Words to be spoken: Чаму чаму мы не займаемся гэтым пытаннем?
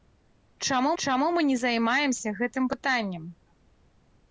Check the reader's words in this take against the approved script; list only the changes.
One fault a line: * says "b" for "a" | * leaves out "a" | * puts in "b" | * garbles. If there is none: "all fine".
all fine